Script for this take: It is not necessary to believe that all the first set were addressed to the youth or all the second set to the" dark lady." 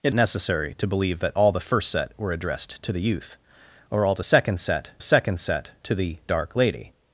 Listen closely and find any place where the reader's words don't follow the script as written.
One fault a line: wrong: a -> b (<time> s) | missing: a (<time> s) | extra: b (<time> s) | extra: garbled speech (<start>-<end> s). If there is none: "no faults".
missing: is not (0.1 s)
extra: second set (5.0 s)